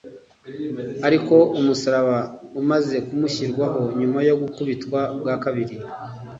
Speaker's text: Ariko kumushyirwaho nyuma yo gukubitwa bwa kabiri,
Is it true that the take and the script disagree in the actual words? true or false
true